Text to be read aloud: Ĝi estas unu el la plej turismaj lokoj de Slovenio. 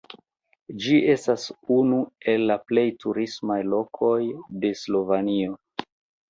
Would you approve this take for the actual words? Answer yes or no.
yes